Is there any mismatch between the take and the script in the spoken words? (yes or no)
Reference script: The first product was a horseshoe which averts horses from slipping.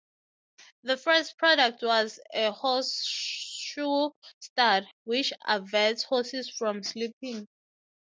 yes